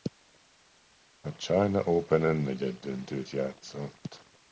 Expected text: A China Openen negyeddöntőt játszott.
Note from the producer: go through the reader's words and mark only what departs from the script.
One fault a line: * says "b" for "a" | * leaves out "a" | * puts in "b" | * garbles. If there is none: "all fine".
all fine